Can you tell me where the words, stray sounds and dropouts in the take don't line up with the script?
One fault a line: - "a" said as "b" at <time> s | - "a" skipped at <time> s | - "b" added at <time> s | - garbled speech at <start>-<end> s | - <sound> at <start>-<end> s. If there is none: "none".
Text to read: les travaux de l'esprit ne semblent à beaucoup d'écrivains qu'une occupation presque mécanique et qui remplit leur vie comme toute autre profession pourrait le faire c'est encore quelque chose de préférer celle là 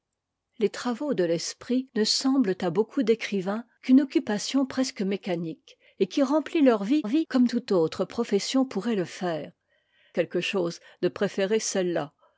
- "vie" added at 7.1 s
- "c'est encore" skipped at 9.5 s